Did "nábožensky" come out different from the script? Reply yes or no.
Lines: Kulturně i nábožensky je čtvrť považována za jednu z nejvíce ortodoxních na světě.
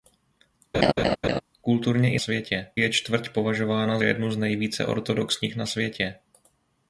yes